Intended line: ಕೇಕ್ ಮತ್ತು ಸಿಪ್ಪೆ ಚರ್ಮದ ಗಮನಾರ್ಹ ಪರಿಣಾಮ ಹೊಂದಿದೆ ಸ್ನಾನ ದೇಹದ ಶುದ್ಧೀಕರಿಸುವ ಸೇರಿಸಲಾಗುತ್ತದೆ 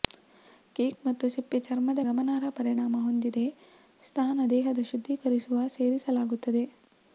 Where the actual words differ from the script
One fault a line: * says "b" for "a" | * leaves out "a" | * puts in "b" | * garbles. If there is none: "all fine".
all fine